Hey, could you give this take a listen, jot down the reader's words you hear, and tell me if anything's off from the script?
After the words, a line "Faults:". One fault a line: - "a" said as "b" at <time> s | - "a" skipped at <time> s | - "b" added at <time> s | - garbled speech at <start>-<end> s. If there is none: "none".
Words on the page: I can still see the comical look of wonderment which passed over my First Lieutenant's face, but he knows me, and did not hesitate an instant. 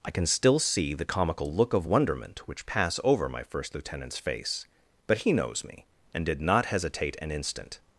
I can still see the comical look of wonderment which pass over my First Lieutenant's face, but he knows me, and did not hesitate an instant.
Faults:
- "passed" said as "pass" at 2.7 s